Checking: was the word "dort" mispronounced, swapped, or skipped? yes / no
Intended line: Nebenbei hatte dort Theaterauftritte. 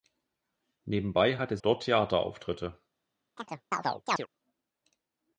no